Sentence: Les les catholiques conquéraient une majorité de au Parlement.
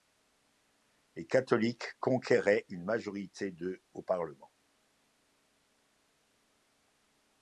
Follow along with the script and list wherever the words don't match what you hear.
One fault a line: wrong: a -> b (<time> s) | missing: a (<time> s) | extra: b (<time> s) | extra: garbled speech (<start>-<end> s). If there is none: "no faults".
missing: les (1.3 s)